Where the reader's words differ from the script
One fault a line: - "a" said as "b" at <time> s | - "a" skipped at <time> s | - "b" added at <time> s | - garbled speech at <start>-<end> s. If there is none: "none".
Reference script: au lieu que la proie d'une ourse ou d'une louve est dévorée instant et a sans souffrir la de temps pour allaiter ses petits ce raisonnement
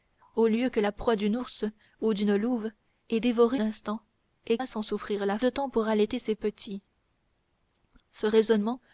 none